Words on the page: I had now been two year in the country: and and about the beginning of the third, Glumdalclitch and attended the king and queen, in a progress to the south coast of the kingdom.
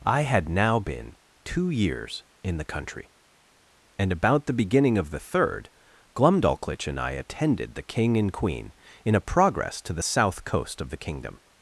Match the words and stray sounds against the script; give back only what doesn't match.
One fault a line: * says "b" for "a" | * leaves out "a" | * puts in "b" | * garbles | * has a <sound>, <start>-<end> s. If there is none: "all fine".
* says "years" for "year"
* leaves out "and"
* puts in "I"